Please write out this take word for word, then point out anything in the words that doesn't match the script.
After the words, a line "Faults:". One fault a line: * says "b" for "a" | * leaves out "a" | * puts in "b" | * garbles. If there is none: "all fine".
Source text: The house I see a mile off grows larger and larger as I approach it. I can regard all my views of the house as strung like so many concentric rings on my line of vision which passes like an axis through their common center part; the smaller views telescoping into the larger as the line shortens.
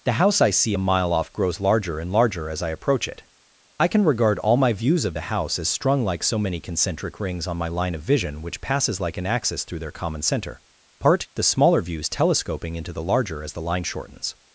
The house I see a mile off grows larger and larger as I approach it. I can regard all my views of the house as strung like so many concentric rings on my line of vision which passes like an axis through their common center part; the smaller views telescoping into the larger as the line shortens.
Faults:
all fine